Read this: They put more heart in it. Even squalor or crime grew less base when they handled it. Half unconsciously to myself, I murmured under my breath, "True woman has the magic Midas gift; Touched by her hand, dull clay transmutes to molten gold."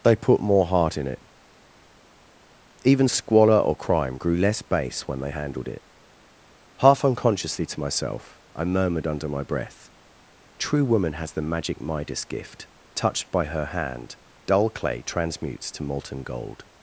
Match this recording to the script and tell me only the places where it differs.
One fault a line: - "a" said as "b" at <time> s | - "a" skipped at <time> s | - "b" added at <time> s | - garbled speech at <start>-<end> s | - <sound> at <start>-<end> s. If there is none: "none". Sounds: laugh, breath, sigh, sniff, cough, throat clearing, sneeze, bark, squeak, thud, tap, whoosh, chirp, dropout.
none